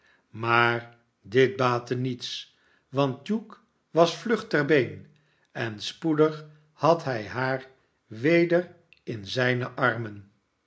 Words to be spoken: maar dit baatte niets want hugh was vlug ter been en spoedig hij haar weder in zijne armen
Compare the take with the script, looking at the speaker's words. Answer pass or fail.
fail